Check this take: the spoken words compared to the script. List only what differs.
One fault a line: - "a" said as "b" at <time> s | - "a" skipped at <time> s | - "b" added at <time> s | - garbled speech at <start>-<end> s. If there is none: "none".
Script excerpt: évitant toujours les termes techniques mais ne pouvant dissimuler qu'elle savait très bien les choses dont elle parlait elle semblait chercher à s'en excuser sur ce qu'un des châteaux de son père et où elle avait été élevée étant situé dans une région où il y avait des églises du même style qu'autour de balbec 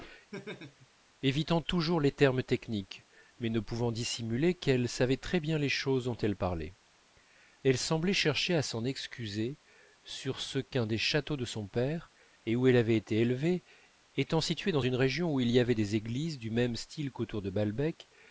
none